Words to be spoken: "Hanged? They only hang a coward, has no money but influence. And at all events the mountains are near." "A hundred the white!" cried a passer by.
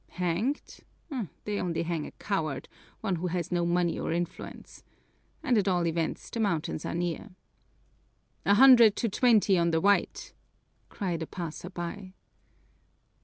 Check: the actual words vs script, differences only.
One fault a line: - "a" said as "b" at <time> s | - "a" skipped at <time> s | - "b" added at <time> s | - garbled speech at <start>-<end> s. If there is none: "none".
- "one who" added at 3.0 s
- "but" said as "or" at 4.0 s
- "to twenty on" added at 8.9 s